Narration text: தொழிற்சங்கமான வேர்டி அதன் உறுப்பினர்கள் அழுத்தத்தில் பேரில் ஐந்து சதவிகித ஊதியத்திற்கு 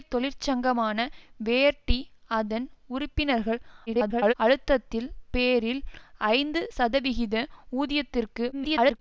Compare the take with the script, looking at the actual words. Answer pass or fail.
fail